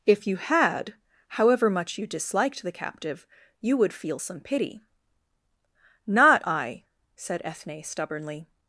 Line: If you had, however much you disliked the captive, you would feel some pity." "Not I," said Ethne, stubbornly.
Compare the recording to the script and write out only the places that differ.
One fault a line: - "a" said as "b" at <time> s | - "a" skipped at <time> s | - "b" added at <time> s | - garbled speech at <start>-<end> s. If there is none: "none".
none